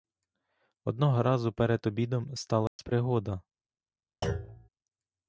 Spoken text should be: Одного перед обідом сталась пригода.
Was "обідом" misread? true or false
false